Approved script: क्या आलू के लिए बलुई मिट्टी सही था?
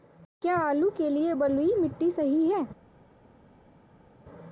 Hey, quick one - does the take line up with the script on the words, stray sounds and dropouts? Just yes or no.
no